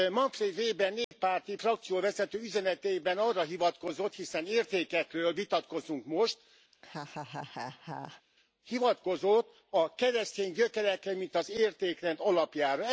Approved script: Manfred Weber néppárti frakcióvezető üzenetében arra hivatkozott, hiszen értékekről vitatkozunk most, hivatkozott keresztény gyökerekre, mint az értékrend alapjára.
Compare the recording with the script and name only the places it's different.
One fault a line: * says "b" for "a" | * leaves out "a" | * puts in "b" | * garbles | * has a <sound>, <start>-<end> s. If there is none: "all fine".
* has a dropout, 1.0-1.1 s
* has a laugh, 6.7-8.2 s
* puts in "a"